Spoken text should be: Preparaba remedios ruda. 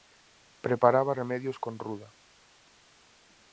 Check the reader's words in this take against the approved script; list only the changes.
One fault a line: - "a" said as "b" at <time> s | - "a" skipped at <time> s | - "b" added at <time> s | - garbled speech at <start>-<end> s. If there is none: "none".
- "con" added at 1.6 s